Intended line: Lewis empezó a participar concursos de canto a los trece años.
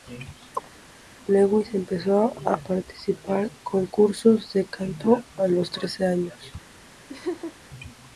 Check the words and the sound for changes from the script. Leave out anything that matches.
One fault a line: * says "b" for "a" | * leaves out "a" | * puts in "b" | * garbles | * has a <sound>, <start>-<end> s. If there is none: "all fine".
* has a chirp, 0.5-0.7 s
* has a laugh, 7.1-7.6 s